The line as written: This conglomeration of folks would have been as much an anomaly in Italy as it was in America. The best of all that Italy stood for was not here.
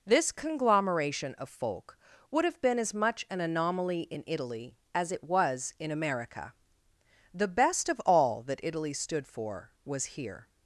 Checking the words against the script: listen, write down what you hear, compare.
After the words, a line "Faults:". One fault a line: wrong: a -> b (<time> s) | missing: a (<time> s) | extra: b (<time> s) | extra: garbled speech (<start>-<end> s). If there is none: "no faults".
This conglomeration of folk would have been as much an anomaly in Italy as it was in America. The best of all that Italy stood for was here.
Faults:
wrong: folks -> folk (1.5 s)
missing: not (10.2 s)